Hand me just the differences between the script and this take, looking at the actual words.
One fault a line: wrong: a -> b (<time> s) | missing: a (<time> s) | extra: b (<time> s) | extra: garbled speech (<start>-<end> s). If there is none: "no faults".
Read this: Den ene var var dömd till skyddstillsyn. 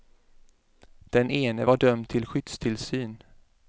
missing: var (1.8 s)